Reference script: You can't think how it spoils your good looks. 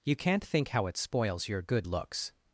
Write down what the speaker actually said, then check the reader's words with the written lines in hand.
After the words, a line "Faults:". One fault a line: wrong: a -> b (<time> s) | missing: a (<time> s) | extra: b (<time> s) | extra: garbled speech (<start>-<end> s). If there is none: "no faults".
You can't think how it spoils your good looks.
Faults:
no faults